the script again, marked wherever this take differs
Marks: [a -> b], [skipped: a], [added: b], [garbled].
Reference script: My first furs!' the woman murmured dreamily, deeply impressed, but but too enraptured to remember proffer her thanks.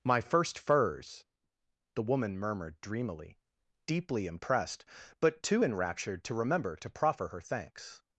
My first furs!' the woman murmured dreamily, deeply impressed, but [skipped: but] too enraptured to remember [added: to] proffer her thanks.